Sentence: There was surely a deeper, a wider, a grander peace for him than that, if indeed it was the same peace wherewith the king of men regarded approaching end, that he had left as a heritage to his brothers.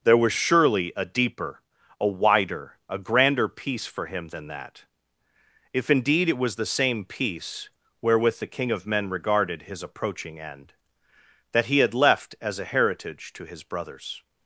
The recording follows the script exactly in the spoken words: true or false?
false